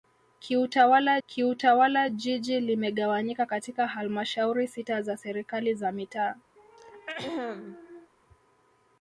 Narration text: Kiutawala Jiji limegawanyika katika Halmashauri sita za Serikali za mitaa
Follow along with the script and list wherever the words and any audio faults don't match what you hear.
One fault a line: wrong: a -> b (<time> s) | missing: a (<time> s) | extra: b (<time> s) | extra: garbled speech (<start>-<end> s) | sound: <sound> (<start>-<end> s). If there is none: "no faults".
extra: kiutawala (1.3 s)
sound: throat clearing (6.6-8.1 s)